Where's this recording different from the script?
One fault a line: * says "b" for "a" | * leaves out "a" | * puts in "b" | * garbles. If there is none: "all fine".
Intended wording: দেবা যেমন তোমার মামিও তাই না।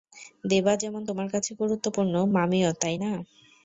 * puts in "কাছে গুরুত্বপূর্ণ"